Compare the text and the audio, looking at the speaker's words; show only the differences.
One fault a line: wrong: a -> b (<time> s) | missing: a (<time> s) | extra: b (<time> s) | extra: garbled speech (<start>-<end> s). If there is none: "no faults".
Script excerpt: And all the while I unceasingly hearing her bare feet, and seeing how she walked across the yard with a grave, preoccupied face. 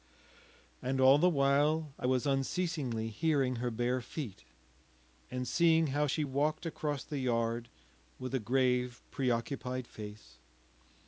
extra: was (2.0 s)